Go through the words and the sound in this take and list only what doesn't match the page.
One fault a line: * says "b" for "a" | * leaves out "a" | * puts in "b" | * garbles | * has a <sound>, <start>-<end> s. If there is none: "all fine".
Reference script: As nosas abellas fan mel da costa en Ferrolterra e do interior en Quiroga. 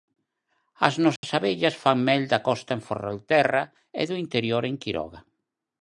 * has a dropout, 1.2-1.2 s